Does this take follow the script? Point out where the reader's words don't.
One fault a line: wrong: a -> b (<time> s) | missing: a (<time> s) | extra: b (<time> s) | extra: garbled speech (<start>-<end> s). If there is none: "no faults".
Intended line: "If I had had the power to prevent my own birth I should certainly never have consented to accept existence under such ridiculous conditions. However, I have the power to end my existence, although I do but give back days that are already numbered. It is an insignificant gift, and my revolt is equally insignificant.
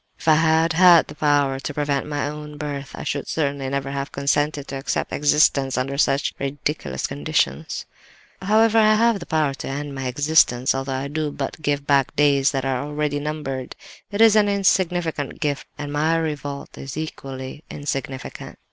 no faults